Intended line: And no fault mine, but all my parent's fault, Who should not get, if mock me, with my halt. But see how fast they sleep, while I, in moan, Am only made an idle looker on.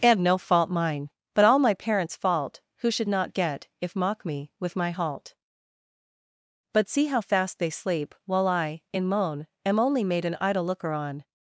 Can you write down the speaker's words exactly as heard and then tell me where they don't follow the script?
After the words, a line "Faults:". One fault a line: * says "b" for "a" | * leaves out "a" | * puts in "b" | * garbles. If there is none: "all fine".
And no fault mine, but all my parent's fault, Who should not get, if mock me, with my halt. But see how fast they sleep, while I, in moan, Am only made an idle looker on.
Faults:
all fine